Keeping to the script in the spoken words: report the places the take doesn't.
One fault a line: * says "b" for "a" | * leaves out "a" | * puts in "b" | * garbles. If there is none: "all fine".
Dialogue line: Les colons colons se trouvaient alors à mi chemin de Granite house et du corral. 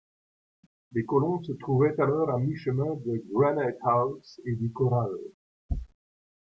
* leaves out "colons"